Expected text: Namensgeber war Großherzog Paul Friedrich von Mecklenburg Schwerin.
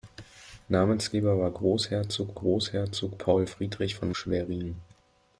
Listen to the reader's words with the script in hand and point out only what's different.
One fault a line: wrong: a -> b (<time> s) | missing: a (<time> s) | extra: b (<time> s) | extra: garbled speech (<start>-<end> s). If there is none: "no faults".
extra: Großherzog (2.3 s)
missing: Mecklenburg (4.1 s)